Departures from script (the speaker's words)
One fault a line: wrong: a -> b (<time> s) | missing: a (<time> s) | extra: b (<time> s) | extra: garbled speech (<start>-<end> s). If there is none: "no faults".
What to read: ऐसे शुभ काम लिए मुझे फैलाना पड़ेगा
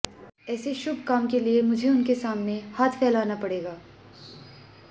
extra: के (1.3 s)
extra: उनके सामने हाथ (1.9 s)